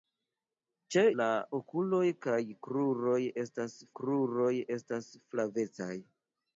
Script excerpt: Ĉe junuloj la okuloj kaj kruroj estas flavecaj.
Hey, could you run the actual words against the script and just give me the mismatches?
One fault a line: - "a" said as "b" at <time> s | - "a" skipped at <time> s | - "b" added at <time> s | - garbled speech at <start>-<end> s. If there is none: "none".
- "junuloj" skipped at 1.0 s
- "kruroj estas" added at 4.0 s